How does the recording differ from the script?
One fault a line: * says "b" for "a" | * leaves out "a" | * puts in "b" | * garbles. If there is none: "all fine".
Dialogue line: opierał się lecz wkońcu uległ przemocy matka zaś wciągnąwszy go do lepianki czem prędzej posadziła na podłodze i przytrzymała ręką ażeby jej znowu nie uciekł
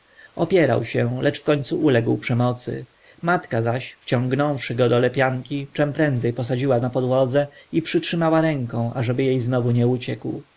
all fine